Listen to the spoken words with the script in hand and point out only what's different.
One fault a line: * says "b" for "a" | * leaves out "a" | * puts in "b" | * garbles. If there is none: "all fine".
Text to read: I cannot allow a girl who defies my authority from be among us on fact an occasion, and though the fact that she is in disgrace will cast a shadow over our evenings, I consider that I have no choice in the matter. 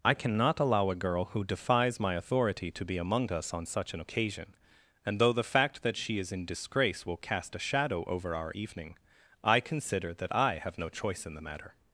* says "to" for "from"
* says "such" for "fact"
* says "evening" for "evenings"